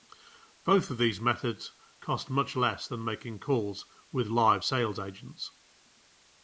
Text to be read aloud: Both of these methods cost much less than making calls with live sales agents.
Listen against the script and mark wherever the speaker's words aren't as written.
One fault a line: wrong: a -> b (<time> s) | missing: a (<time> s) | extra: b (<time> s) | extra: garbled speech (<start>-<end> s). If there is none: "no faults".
no faults